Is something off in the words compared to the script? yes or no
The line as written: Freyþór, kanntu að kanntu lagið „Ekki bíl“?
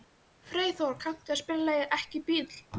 yes